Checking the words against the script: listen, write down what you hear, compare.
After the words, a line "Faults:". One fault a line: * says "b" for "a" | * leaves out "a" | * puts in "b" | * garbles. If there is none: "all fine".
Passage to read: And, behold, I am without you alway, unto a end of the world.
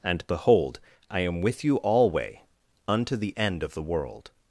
And, behold, I am with you alway, unto the end of the world.
Faults:
* says "with" for "without"
* says "the" for "a"